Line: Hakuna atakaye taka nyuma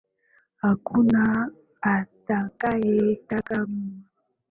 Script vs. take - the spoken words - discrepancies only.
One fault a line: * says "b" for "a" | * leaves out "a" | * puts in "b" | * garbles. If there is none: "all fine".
all fine